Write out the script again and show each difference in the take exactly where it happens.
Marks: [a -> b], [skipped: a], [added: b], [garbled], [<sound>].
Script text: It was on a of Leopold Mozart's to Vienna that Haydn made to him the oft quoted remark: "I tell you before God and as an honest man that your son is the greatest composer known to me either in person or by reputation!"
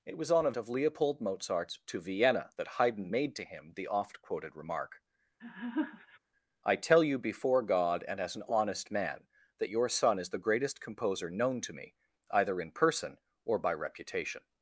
It was on a of Leopold Mozart's to Vienna that Haydn made to him the oft quoted remark: [laugh] "I tell you before God and as an honest man that your son is the greatest composer known to me either in person or by reputation!"